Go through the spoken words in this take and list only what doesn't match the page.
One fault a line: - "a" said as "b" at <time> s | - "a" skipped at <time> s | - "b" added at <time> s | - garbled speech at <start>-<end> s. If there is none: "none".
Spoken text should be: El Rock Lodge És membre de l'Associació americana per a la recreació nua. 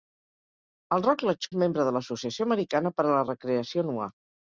none